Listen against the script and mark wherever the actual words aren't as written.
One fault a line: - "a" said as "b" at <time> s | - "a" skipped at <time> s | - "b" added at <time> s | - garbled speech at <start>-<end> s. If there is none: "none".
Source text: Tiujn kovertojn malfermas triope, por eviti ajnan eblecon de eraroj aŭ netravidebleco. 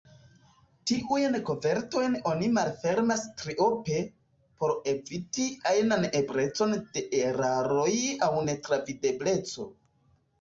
- "oni" added at 2.3 s